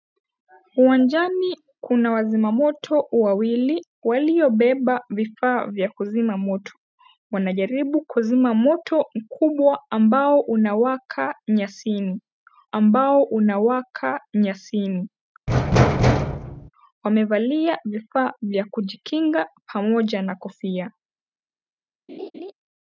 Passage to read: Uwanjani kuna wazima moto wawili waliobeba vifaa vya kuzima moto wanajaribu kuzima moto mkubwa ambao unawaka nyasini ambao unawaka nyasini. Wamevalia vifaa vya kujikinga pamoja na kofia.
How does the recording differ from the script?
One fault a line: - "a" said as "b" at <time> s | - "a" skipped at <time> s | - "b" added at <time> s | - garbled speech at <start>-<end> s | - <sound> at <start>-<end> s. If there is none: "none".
- thud at 15.5-16.7 s
- laugh at 22.1-22.5 s